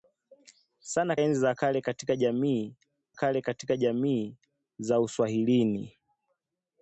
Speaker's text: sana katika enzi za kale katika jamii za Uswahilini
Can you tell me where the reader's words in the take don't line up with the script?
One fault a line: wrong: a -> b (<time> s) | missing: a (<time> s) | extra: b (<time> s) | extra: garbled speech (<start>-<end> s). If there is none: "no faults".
missing: katika (1.1 s)
extra: kale katika jamii (3.1 s)